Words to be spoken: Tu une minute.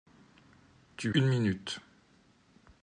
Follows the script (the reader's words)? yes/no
yes